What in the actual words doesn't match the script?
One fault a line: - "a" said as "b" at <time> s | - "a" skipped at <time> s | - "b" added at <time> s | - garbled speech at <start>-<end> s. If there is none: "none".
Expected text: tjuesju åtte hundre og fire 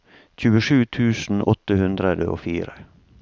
- "tusen" added at 1.0 s